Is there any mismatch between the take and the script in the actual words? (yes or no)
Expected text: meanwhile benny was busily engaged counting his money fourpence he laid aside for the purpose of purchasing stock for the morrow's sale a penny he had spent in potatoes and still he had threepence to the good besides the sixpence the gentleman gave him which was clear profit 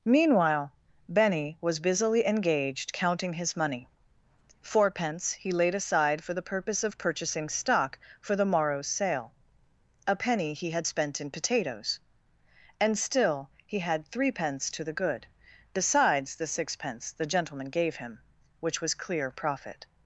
no